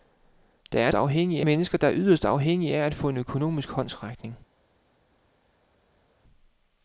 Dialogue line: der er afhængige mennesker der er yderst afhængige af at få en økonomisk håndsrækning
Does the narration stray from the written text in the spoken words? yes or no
no